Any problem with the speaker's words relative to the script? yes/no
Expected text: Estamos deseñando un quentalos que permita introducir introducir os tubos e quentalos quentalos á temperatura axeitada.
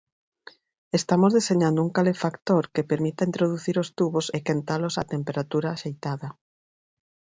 yes